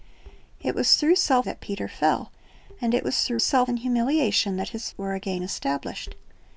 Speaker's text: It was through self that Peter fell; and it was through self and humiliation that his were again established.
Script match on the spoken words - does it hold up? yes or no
yes